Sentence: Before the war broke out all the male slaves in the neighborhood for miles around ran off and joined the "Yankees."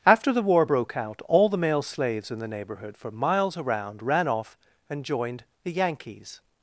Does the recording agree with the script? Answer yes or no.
no